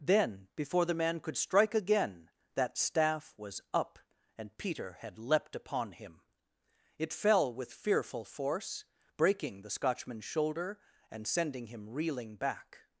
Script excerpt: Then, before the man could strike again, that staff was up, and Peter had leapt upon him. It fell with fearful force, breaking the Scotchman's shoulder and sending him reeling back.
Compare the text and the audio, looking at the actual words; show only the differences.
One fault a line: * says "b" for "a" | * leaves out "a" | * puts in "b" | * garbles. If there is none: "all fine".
all fine